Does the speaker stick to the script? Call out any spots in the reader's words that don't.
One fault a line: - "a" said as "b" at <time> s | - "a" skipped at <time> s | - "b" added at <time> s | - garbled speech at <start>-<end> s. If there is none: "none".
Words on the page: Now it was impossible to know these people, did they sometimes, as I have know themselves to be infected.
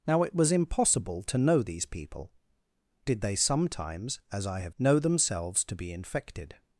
none